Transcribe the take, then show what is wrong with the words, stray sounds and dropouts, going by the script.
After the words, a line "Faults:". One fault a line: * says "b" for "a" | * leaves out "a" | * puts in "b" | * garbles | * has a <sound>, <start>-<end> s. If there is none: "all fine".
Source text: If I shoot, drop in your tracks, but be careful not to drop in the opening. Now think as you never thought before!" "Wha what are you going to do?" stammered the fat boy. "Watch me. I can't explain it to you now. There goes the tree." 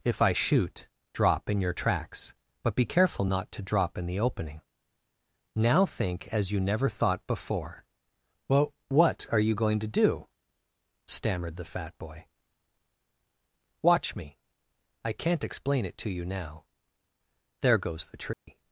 If I shoot, drop in your tracks, but be careful not to drop in the opening. Now think as you never thought before!" "Well what are you going to do?" stammered the fat boy. "Watch me. I can't explain it to you now. There goes the tree."
Faults:
* says "Well" for "Wha"
* has a dropout, 18.3-18.5 s